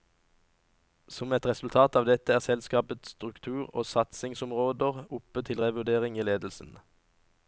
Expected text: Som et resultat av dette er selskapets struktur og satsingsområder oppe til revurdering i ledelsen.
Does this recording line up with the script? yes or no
yes